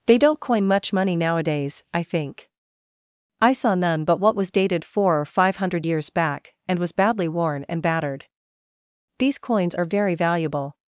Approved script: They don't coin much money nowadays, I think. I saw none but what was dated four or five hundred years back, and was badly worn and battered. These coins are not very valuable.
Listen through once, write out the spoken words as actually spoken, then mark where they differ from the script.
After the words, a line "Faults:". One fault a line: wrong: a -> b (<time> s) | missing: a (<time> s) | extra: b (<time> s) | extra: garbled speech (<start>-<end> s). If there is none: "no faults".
They don't coin much money nowadays, I think. I saw none but what was dated four or five hundred years back, and was badly worn and battered. These coins are very valuable.
Faults:
missing: not (9.9 s)